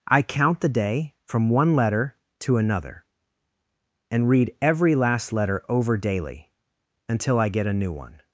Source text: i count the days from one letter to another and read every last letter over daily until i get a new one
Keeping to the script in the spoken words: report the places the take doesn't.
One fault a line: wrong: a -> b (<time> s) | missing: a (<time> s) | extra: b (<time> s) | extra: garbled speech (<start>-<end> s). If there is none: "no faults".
wrong: days -> day (0.7 s)